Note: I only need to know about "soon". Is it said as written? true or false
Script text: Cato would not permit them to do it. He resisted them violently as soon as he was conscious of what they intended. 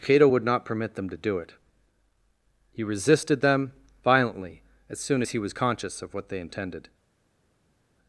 true